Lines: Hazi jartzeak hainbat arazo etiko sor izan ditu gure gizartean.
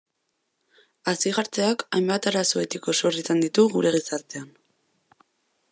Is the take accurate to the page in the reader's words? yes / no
yes